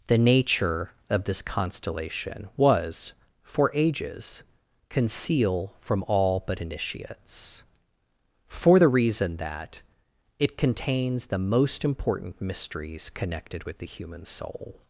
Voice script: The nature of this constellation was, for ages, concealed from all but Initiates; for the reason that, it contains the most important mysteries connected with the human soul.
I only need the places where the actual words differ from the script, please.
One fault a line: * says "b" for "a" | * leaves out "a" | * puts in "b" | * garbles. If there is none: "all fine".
* says "conceal" for "concealed"